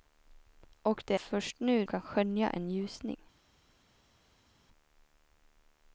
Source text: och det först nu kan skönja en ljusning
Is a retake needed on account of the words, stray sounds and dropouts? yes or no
no